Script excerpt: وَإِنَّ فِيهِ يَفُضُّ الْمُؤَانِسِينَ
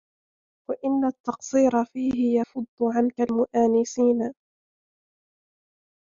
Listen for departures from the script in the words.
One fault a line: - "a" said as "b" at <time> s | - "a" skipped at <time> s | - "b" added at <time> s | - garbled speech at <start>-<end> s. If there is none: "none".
- "التَّقْصِيرَ" added at 1.1 s
- "عَنْك" added at 2.8 s